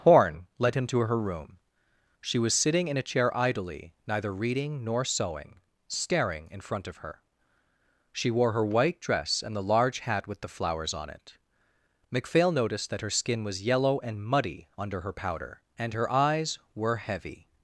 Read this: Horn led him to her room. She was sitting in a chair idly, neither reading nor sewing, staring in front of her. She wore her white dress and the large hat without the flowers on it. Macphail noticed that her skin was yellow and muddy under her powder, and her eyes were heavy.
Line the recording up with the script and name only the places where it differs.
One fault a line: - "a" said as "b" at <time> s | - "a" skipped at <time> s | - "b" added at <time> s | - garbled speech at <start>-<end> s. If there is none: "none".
- "without" said as "with" at 10.3 s